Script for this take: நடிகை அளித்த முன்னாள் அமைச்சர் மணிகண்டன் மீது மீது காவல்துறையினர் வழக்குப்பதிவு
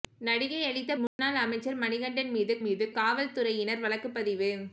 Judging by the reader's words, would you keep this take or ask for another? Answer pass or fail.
pass